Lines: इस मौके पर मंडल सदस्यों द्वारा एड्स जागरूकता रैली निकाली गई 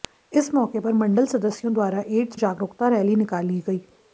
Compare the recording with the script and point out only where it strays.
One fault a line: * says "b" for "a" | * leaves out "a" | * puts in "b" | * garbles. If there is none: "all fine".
all fine